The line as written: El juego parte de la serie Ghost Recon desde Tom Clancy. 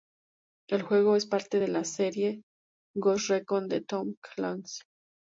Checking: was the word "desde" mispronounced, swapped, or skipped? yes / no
yes